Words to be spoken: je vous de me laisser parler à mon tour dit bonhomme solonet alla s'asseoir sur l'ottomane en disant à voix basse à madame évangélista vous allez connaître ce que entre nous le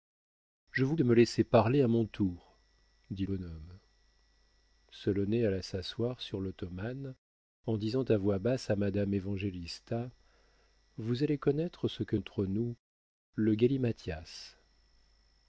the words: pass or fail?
pass